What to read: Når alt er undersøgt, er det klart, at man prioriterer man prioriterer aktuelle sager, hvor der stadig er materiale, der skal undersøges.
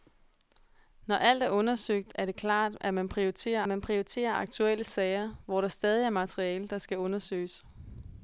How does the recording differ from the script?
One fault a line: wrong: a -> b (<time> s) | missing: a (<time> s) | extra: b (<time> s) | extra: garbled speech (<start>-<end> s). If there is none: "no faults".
no faults